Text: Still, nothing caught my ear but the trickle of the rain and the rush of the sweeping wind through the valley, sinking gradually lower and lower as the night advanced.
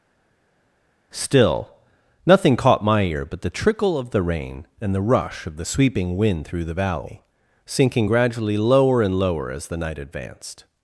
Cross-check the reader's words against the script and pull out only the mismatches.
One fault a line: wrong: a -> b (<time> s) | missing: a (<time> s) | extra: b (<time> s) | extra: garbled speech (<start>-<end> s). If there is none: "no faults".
no faults